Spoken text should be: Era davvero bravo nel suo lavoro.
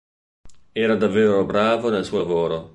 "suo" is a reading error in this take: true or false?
false